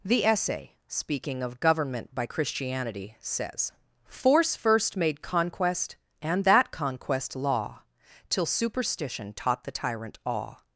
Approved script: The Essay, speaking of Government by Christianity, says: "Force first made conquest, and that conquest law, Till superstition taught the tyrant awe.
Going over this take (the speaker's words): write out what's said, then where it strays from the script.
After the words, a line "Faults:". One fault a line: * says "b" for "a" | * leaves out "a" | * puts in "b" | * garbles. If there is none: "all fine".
The Essay, speaking of Government by Christianity, says: "Force first made conquest, and that conquest law, Till superstition taught the tyrant awe.
Faults:
all fine